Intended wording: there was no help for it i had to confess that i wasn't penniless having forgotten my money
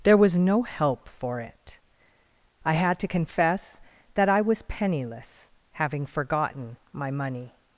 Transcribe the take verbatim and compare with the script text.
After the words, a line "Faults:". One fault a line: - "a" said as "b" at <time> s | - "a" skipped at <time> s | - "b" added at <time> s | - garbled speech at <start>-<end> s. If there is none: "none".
there was no help for it i had to confess that i was penniless having forgotten my money
Faults:
- "wasn't" said as "was" at 4.4 s